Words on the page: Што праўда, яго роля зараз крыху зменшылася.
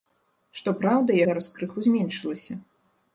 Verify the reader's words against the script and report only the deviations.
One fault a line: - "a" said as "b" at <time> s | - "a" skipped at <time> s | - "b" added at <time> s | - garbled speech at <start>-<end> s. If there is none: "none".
- "яго роля" skipped at 1.2 s